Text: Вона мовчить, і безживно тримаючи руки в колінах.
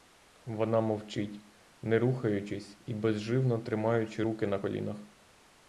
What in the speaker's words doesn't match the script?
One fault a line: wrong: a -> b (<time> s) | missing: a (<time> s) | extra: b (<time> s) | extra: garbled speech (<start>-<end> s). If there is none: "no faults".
extra: не рухаючись (1.8 s)
wrong: в -> на (4.5 s)